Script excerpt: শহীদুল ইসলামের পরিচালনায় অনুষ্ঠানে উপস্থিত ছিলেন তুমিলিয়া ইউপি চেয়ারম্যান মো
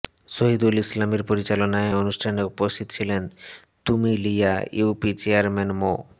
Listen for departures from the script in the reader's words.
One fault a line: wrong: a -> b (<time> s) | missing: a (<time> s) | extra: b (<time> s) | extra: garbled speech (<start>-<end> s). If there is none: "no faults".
no faults